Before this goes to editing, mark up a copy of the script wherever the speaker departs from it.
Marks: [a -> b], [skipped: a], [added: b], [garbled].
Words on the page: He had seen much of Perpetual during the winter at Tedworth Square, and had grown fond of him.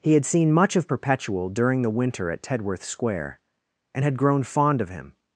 He had seen much of Perpetual during the winter at Tedworth Square, and had grown fond of him.